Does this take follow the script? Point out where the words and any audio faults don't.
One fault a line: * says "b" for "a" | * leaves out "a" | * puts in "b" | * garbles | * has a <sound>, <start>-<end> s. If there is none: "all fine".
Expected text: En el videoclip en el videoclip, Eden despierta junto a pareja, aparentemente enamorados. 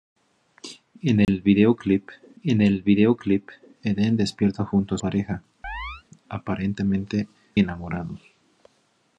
* has a dropout, 1.2-1.3 s
* has a chirp, 5.6-6.0 s